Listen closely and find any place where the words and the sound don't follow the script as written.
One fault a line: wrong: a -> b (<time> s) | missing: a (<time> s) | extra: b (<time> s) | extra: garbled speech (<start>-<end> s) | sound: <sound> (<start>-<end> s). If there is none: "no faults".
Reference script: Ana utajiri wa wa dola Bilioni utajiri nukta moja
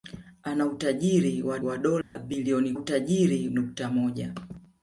sound: dropout (2.0-2.2 s)